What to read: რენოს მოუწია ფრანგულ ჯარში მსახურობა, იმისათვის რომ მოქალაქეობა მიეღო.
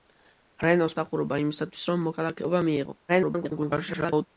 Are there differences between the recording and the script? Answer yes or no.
yes